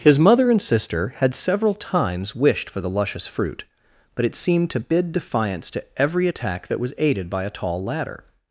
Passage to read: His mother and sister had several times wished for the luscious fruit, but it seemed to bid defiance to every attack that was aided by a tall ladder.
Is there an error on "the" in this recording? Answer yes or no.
no